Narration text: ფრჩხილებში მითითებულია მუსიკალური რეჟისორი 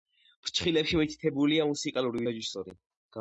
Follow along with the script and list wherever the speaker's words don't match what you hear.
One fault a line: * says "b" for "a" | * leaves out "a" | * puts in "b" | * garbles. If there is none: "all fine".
all fine